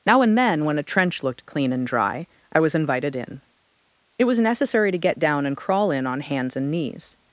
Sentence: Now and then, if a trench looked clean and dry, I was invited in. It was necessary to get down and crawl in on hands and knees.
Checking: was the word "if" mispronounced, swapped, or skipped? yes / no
yes